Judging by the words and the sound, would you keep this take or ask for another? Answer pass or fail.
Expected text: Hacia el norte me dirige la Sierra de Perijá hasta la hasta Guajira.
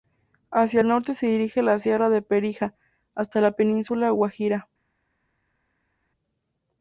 fail